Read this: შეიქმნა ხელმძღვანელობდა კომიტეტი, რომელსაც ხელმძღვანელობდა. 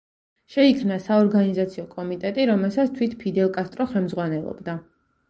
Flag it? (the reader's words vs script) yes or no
yes